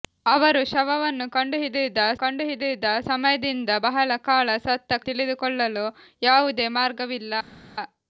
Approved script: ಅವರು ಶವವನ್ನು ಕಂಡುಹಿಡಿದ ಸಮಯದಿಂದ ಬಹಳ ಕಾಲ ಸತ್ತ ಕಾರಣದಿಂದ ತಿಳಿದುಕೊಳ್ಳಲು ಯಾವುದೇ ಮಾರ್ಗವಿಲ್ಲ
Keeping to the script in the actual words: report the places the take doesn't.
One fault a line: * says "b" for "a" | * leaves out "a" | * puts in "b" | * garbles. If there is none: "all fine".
* puts in "ಕಂಡುಹಿಡಿದ"
* leaves out "ಕಾರಣದಿಂದ"